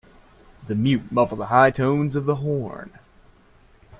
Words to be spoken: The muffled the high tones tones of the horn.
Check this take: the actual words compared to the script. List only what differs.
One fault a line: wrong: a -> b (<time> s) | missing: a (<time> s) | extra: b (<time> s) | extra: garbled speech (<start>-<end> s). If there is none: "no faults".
extra: mute (0.7 s)
missing: tones (2.1 s)